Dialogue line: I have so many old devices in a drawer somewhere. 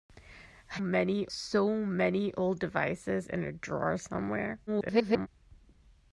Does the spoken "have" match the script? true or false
false